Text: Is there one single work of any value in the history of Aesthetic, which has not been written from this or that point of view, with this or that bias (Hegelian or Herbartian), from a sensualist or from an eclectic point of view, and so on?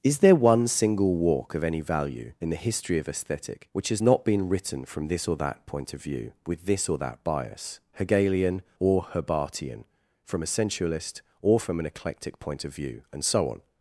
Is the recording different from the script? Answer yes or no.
yes